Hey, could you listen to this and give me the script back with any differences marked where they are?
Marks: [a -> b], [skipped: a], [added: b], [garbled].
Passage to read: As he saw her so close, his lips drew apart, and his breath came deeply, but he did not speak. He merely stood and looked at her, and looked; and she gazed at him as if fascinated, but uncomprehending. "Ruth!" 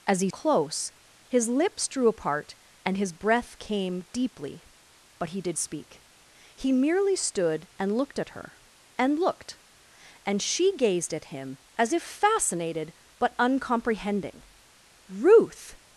As he [skipped: saw her so] close, his lips drew apart, and his breath came deeply, but he did [skipped: not] speak. He merely stood and looked at her, and looked; and she gazed at him as if fascinated, but uncomprehending. "Ruth!"